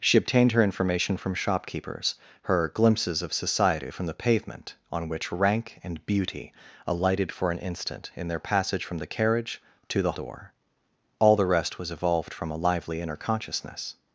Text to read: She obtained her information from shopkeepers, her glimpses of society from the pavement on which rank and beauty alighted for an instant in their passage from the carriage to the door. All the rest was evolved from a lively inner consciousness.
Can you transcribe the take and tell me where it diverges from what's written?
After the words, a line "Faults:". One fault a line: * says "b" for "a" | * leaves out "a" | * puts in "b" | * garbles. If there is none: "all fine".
She obtained her information from shopkeepers, her glimpses of society from the pavement on which rank and beauty alighted for an instant in their passage from the carriage to the door. All the rest was evolved from a lively inner consciousness.
Faults:
all fine